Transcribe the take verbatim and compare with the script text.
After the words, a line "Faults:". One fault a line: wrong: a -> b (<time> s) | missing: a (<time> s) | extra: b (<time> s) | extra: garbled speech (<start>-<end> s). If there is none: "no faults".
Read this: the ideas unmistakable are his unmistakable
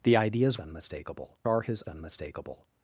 the ideas unmistakable are his unmistakable
Faults:
no faults